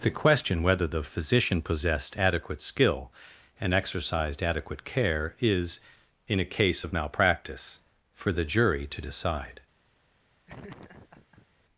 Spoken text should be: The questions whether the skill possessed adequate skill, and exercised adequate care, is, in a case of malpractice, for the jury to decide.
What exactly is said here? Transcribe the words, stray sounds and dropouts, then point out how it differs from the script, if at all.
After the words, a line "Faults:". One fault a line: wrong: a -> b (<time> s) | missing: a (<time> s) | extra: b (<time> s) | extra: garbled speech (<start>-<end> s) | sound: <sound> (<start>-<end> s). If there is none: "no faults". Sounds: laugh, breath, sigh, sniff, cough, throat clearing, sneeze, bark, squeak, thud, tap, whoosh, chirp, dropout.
The question whether the physician possessed adequate skill, and exercised adequate care, is, in a case of malpractice, for the jury to decide.
Faults:
wrong: questions -> question (0.1 s)
wrong: skill -> physician (1.0 s)
sound: laugh (10.5-11.5 s)